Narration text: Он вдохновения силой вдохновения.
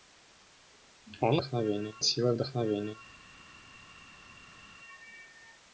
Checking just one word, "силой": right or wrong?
right